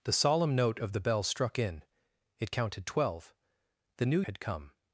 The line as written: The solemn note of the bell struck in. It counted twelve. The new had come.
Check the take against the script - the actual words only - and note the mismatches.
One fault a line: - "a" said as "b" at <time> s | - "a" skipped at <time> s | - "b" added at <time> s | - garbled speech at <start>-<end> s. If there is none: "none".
none